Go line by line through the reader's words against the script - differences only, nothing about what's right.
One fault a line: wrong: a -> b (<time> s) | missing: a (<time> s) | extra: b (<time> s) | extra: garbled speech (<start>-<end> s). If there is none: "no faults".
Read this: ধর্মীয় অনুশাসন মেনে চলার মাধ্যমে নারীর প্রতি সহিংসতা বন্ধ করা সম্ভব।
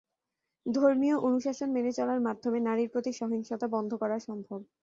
no faults